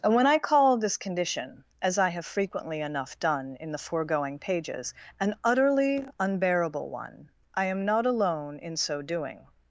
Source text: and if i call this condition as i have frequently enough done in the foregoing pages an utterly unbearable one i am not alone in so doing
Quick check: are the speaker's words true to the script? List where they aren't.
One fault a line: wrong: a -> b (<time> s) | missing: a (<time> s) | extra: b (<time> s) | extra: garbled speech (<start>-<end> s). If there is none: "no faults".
wrong: if -> when (0.1 s)